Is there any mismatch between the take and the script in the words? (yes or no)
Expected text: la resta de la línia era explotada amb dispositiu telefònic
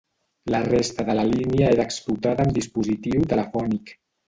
no